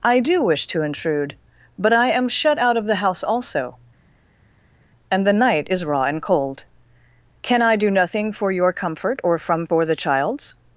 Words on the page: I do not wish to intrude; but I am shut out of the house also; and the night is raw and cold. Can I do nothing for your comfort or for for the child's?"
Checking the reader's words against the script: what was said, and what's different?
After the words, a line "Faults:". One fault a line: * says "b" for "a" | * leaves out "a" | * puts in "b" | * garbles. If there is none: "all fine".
I do wish to intrude; but I am shut out of the house also; and the night is raw and cold. Can I do nothing for your comfort or from for the child's?"
Faults:
* leaves out "not"
* says "from" for "for"